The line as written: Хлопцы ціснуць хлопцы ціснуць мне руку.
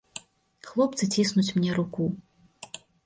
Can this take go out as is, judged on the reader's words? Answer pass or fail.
fail